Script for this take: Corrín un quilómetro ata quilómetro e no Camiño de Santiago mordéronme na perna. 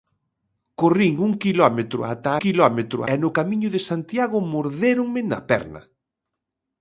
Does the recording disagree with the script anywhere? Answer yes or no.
no